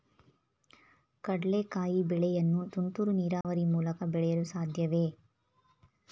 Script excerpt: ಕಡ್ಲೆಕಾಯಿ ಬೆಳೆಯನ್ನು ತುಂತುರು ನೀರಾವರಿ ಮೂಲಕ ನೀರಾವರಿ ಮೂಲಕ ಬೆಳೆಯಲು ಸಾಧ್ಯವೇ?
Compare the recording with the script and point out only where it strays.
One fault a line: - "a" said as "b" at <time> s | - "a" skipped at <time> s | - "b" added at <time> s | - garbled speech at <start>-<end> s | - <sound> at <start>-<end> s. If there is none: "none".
- dropout at 3.4-3.4 s
- "ನೀರಾವರಿ ಮೂಲಕ" skipped at 4.0 s